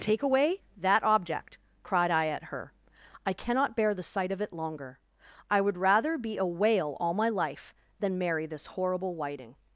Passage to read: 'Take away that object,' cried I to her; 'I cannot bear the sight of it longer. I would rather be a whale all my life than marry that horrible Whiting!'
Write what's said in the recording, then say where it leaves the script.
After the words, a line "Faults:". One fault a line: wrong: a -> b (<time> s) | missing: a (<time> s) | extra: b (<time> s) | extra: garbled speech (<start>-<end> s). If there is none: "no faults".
'Take away that object,' cried I at her; 'I cannot bear the sight of it longer. I would rather be a whale all my life than marry this horrible Whiting!'
Faults:
wrong: to -> at (2.3 s)
wrong: that -> this (8.5 s)